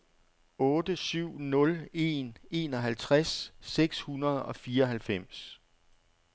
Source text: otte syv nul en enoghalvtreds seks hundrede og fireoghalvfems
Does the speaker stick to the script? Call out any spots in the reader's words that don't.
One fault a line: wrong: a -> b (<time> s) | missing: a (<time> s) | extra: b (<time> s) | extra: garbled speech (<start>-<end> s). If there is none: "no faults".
no faults